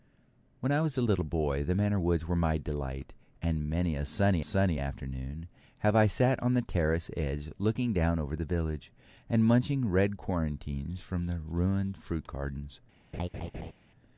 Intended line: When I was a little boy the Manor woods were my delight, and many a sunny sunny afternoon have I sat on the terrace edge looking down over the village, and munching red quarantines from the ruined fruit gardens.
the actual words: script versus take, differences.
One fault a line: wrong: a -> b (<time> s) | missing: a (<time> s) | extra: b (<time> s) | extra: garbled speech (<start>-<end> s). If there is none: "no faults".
no faults